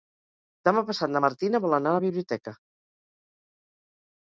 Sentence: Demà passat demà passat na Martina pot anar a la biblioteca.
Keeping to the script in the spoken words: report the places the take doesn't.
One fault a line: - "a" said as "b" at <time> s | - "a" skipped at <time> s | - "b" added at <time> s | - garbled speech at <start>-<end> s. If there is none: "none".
- "demà passat" skipped at 1.1 s
- "pot" said as "vol" at 1.7 s